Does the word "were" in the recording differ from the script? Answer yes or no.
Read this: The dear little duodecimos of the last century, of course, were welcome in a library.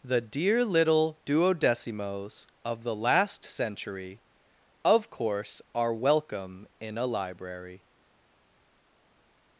yes